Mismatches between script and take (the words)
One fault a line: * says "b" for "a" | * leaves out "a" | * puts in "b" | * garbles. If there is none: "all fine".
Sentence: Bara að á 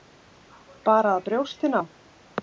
* puts in "brjóstin"